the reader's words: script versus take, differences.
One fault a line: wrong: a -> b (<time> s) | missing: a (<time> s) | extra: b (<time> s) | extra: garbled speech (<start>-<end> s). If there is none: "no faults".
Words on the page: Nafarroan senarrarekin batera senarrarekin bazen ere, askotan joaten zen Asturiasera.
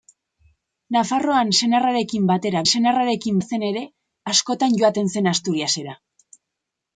no faults